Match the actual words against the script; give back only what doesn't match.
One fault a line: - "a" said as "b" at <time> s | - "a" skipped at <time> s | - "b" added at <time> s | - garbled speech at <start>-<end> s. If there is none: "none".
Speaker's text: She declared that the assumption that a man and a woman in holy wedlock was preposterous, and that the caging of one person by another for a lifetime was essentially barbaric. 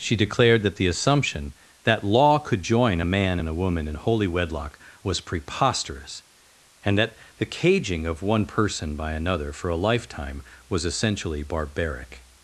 - "law could join" added at 2.0 s